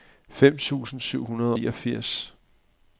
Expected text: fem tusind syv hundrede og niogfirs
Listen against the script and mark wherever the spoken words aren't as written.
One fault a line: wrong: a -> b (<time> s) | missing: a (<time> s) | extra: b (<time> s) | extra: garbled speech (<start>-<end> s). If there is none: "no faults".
missing: og (1.6 s)